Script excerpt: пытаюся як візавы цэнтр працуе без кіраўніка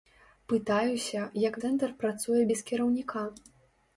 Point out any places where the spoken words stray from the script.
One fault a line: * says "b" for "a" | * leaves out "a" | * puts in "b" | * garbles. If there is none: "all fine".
* leaves out "візавы"